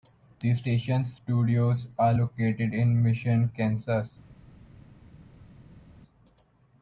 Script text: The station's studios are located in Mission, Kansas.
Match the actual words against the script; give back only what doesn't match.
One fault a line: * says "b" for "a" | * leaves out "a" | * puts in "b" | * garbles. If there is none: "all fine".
all fine